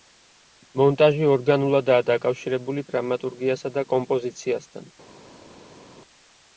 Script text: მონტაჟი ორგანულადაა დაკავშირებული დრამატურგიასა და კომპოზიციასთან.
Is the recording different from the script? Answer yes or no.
no